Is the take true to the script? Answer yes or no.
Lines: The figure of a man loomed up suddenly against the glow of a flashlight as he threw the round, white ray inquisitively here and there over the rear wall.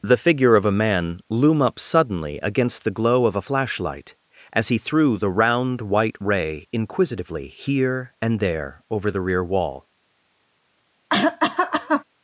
no